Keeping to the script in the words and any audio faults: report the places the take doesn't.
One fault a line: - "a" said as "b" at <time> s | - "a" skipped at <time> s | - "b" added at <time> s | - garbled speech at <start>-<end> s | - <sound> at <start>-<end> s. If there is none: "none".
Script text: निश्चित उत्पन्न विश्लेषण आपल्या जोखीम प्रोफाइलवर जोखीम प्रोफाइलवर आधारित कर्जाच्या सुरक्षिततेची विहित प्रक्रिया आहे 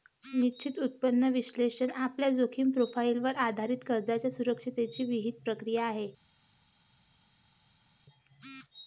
- "जोखीम प्रोफाइलवर" skipped at 3.4 s